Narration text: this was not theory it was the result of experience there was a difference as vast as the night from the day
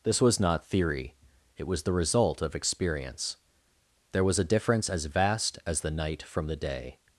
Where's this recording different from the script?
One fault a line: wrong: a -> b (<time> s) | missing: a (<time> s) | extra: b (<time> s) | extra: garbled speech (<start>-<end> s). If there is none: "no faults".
no faults